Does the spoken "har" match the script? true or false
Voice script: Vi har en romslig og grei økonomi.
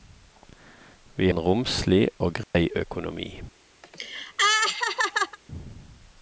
false